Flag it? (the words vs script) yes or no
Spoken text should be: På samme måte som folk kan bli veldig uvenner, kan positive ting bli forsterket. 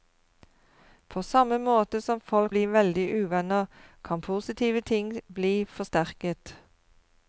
yes